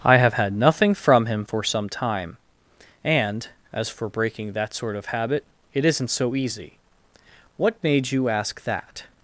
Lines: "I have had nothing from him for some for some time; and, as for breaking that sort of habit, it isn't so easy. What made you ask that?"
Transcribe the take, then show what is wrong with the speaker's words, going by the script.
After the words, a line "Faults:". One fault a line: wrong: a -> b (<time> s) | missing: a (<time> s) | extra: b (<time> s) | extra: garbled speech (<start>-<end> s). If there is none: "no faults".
"I have had nothing from him for some time; and, as for breaking that sort of habit, it isn't so easy. What made you ask that?"
Faults:
missing: for some (1.9 s)